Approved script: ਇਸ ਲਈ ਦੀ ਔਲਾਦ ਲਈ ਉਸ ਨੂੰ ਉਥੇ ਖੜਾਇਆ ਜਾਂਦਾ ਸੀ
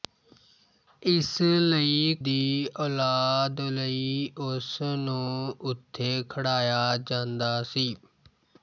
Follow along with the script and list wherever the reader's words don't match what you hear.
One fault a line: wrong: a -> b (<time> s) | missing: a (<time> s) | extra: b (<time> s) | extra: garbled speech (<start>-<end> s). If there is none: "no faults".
no faults